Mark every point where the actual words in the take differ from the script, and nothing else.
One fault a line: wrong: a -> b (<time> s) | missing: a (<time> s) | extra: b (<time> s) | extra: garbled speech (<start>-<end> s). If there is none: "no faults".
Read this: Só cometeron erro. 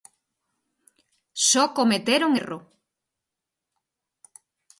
no faults